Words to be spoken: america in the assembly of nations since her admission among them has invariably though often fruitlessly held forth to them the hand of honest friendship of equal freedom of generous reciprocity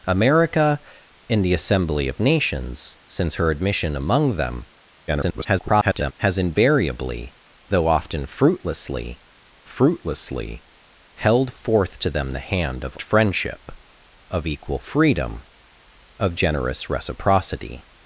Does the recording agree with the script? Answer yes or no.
no